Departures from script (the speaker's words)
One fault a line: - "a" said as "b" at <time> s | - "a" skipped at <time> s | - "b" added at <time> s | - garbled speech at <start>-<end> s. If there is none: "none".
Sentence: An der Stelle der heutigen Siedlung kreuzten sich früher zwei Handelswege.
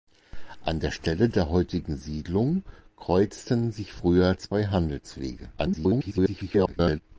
- garbled speech at 5.6-7.0 s